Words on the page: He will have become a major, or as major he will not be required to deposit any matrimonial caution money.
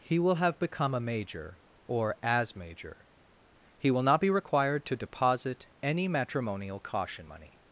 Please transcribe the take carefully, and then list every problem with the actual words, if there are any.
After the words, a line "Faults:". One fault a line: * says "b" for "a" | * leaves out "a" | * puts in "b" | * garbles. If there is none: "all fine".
He will have become a major, or as major he will not be required to deposit any matrimonial caution money.
Faults:
all fine